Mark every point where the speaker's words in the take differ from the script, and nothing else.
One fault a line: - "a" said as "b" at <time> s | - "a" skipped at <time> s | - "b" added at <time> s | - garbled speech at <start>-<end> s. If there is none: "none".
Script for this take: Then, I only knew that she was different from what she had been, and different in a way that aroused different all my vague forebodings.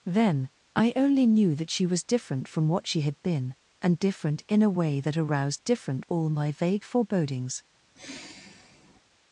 none